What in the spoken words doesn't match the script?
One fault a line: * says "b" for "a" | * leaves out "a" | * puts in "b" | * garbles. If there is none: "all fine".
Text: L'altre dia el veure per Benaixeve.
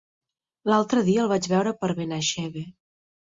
* puts in "vaig"